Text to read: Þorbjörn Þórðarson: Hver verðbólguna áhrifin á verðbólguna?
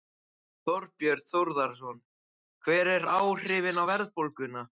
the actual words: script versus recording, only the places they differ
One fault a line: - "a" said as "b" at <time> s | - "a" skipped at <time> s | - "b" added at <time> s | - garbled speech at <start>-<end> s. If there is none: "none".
- "verðbólguna" said as "eru" at 3.0 s